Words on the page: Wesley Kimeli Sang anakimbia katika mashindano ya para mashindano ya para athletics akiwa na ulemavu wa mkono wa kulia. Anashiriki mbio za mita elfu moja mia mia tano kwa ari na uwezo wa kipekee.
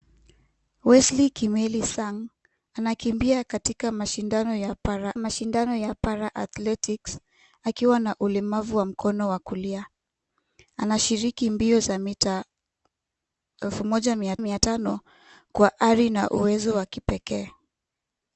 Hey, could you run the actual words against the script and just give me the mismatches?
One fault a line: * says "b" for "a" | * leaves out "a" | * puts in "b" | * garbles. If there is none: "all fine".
all fine